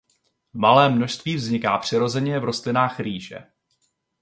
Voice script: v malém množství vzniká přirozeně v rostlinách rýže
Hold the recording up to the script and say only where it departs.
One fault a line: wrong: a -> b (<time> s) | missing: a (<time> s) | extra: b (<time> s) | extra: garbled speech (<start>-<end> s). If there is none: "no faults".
no faults